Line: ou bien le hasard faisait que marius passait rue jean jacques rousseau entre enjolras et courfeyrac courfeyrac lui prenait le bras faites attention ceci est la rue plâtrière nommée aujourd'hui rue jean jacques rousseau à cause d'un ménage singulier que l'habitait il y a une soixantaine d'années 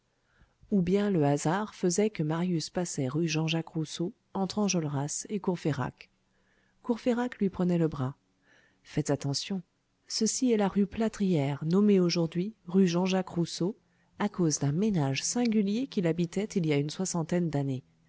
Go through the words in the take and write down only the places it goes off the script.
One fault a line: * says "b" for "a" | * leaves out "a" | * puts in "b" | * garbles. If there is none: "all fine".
* says "qui" for "que"